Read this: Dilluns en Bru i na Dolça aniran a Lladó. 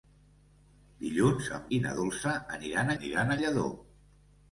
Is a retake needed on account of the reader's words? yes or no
yes